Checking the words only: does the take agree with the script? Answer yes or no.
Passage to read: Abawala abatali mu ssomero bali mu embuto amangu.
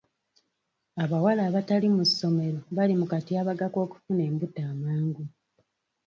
no